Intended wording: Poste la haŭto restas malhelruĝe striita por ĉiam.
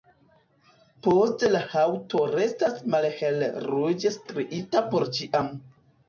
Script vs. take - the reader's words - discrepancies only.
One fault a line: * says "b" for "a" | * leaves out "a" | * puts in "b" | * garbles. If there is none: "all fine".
all fine